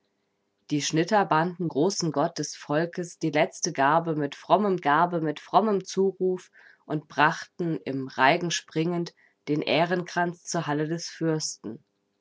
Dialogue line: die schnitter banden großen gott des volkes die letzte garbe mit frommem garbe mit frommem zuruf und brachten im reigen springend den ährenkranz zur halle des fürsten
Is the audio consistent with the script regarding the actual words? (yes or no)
yes